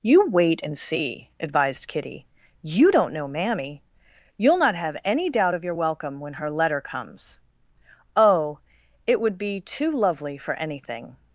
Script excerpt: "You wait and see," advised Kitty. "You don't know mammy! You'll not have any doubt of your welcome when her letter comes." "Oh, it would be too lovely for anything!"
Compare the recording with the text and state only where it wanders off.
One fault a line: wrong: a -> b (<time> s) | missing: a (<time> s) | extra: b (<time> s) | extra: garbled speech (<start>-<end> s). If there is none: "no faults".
no faults